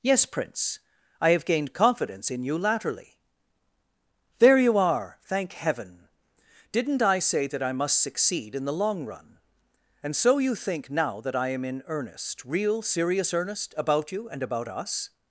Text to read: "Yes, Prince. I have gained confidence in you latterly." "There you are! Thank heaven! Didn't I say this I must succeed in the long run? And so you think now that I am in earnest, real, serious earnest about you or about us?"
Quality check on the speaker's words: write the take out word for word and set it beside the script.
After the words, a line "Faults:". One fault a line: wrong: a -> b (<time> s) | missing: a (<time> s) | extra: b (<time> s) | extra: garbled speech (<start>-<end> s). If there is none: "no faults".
"Yes, Prince. I have gained confidence in you latterly." "There you are! Thank heaven! Didn't I say that I must succeed in the long run? And so you think now that I am in earnest, real, serious earnest about you and about us?"
Faults:
wrong: this -> that (7.5 s)
wrong: or -> and (14.3 s)